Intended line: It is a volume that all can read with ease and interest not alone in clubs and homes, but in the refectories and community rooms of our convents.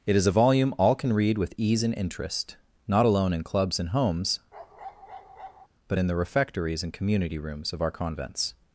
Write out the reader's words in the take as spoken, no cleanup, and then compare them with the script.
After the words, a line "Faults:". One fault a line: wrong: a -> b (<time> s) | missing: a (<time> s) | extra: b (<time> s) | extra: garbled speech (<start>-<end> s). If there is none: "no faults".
It is a volume all can read with ease and interest not alone in clubs and homes, but in the refectories and community rooms of our convents.
Faults:
missing: that (0.7 s)